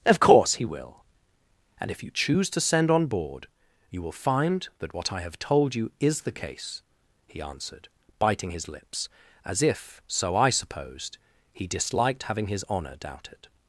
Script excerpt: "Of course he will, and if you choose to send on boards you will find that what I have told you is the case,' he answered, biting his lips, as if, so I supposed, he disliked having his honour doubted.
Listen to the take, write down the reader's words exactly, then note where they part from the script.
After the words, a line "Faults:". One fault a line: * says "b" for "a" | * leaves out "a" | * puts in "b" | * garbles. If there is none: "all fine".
"Of course he will, and if you choose to send on board you will find that what I have told you is the case,' he answered, biting his lips, as if, so I supposed, he disliked having his honour doubted.
Faults:
* says "board" for "boards"